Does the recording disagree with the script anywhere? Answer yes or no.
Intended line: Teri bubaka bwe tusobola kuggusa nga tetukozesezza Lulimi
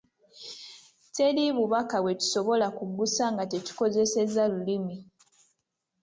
no